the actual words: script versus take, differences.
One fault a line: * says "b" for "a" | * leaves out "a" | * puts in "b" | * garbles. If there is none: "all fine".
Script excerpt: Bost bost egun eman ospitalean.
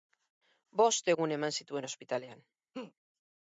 * leaves out "bost"
* puts in "zituen"